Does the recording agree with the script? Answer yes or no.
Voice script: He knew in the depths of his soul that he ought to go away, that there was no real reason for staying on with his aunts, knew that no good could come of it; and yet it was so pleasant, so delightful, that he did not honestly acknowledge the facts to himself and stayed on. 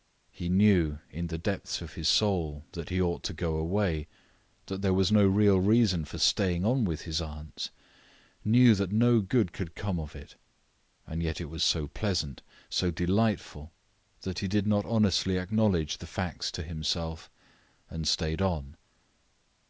yes